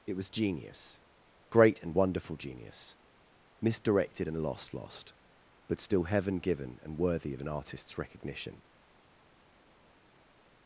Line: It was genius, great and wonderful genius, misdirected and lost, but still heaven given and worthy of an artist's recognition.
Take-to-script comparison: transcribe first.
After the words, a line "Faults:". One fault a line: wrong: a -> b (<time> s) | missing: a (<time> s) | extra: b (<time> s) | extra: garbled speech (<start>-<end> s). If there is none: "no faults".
It was genius, great and wonderful genius, misdirected and lost lost, but still heaven given and worthy of an artist's recognition.
Faults:
extra: lost (4.7 s)